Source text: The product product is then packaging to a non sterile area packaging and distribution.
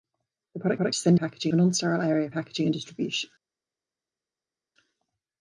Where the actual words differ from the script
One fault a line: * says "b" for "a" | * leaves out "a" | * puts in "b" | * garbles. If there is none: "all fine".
all fine